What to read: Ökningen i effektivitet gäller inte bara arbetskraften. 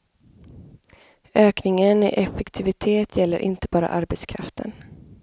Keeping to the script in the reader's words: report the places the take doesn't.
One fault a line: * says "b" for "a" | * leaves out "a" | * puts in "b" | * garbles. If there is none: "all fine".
all fine